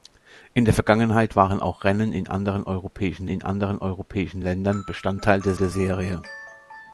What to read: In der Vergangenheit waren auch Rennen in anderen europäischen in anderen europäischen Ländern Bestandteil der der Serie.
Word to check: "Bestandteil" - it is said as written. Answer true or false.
true